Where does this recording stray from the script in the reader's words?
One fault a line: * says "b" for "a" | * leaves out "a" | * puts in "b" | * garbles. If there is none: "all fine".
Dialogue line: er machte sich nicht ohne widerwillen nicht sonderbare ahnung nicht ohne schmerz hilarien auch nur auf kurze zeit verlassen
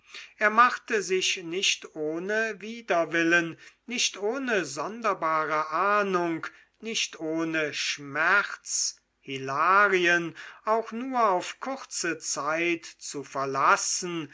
* puts in "ohne"
* puts in "zu"